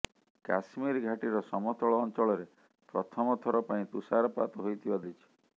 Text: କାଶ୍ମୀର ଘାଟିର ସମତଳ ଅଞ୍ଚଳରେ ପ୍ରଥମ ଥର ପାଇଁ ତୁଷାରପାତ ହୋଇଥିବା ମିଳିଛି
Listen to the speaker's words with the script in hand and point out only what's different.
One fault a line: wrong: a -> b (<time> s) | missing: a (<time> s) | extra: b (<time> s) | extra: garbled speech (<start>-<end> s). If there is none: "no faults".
no faults